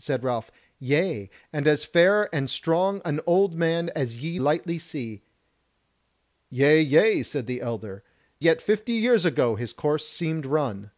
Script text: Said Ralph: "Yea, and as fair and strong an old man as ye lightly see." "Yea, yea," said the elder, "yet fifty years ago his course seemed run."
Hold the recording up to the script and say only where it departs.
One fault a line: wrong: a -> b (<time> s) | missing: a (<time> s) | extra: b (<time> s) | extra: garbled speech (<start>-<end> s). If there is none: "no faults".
no faults